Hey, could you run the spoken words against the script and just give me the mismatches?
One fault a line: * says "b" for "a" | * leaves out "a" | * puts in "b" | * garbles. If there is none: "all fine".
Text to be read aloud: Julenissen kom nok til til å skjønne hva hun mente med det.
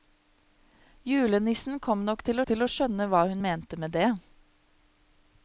all fine